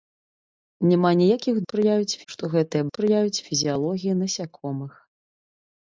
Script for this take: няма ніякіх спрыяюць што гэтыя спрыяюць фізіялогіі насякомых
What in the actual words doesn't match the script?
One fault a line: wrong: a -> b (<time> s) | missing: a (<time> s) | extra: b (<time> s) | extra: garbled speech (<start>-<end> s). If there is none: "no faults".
no faults